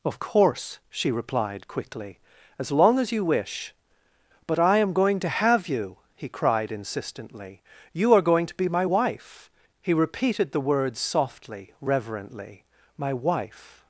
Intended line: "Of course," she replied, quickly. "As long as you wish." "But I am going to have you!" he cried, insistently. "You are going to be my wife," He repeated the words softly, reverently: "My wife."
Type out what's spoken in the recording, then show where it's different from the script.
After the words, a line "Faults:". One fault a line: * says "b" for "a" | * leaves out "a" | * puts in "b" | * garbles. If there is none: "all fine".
"Of course," she replied, quickly. "As long as you wish." "But I am going to have you!" he cried, insistently. "You are going to be my wife," He repeated the words softly, reverently: "My wife."
Faults:
all fine